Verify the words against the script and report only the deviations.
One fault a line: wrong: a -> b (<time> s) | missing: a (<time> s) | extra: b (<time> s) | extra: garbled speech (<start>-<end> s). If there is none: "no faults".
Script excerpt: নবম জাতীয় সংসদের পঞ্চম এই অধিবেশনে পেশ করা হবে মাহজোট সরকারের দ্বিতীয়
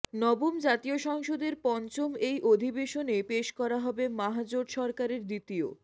no faults